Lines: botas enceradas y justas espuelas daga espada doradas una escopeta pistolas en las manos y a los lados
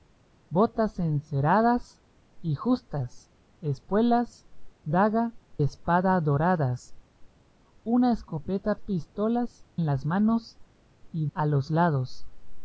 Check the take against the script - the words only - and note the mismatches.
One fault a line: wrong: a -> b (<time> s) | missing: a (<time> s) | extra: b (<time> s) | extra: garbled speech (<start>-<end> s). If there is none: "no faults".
no faults